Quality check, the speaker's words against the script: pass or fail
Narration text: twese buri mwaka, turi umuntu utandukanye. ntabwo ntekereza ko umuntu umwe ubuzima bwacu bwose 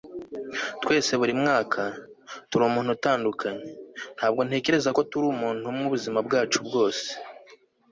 fail